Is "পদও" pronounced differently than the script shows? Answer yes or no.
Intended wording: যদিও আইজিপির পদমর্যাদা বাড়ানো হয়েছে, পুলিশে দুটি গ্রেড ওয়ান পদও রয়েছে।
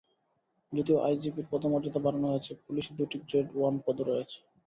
no